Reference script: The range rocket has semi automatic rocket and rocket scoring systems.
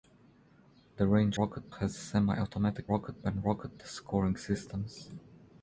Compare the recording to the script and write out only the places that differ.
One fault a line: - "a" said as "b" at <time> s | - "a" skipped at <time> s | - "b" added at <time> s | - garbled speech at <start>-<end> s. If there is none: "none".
none